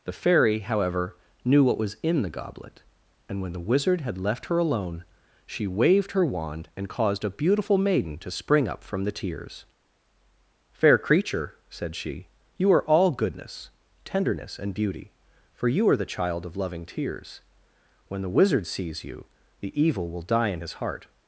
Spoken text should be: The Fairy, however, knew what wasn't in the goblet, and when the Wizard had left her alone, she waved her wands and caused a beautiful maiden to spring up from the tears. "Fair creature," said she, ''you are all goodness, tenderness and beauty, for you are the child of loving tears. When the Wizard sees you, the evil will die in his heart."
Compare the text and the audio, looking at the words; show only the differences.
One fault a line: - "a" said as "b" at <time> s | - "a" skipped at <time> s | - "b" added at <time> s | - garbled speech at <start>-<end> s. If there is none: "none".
- "wasn't" said as "was" at 1.8 s
- "wands" said as "wand" at 6.2 s